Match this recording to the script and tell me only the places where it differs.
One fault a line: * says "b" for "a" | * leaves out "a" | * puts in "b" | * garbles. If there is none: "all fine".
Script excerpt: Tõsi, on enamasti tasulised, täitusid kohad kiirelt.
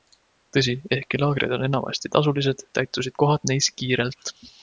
* puts in "ehkki laagrid"
* puts in "neis"